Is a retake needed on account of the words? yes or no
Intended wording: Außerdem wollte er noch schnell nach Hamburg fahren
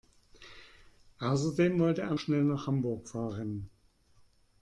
yes